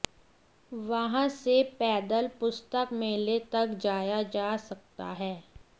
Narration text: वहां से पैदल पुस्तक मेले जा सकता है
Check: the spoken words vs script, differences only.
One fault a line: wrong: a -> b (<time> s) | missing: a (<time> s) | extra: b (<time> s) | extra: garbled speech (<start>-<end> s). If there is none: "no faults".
extra: तक जाया (3.5 s)